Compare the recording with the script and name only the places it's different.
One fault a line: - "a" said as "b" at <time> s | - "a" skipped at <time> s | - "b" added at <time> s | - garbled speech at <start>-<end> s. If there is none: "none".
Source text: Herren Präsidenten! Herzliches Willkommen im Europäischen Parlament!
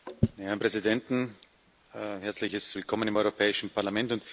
none